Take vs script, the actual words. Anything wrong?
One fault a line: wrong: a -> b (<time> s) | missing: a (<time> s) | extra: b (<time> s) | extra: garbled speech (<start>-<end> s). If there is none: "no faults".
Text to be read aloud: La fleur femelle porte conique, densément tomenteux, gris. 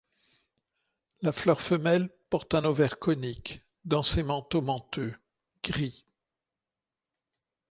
extra: un ovaire (2.5 s)